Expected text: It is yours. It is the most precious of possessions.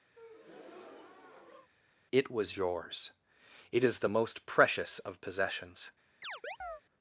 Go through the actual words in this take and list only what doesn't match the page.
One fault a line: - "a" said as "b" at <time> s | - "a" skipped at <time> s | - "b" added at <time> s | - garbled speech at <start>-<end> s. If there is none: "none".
- "is" said as "was" at 2.3 s